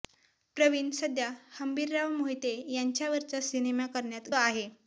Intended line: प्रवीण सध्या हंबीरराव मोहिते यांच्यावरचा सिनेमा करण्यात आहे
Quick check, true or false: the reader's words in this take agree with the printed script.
true